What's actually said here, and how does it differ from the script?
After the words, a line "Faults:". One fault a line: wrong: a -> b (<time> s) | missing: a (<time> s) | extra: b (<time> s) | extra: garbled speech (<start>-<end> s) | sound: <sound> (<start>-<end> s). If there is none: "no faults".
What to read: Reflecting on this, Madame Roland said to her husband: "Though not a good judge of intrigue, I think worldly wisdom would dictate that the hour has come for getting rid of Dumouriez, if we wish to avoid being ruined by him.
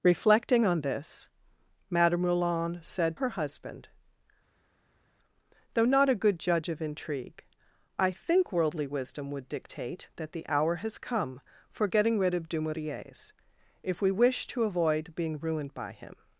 Reflecting on this, Madame Roland said her husband: "Though not a good judge of intrigue, I think worldly wisdom would dictate that the hour has come for getting rid of Dumouriez, if we wish to avoid being ruined by him.
Faults:
missing: to (3.2 s)